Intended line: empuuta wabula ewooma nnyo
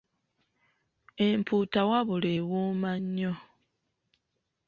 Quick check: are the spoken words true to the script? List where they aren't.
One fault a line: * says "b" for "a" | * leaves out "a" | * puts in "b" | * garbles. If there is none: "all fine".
all fine